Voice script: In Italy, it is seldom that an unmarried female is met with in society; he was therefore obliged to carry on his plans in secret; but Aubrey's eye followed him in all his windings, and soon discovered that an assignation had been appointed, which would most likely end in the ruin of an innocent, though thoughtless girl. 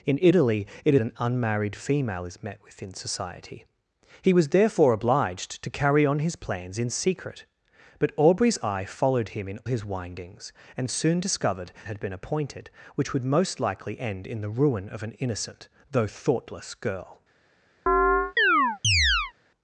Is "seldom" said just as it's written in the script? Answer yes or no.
no